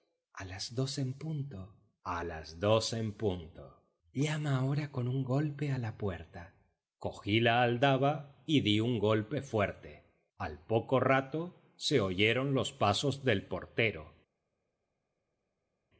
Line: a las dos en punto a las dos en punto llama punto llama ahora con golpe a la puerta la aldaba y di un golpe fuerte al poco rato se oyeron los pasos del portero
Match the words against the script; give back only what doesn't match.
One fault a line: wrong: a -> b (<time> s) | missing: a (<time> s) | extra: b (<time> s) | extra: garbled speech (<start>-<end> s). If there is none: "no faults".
missing: punto llama (4.6 s)
extra: un (5.1 s)
extra: cogí (7.0 s)